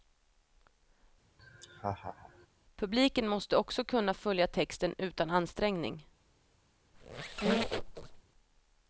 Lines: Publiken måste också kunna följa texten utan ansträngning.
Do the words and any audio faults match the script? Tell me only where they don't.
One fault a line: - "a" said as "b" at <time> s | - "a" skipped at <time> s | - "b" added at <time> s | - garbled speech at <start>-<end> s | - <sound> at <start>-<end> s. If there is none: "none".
- laugh at 1.4-2.5 s
- squeak at 6.9-8.2 s